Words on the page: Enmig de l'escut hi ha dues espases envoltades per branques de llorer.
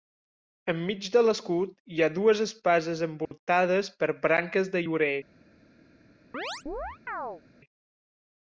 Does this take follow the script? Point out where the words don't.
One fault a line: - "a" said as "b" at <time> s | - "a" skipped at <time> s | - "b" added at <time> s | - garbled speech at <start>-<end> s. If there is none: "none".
none